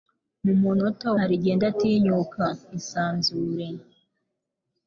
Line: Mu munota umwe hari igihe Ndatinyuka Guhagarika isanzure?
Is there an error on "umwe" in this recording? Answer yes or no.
yes